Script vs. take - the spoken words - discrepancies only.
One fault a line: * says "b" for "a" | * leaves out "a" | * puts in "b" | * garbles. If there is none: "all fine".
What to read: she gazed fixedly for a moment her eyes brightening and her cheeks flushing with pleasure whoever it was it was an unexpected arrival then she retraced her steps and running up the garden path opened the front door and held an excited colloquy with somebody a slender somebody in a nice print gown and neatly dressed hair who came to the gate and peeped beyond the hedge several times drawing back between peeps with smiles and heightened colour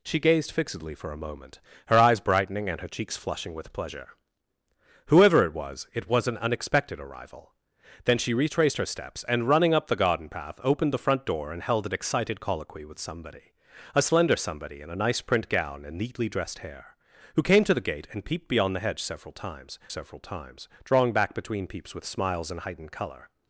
* puts in "several times"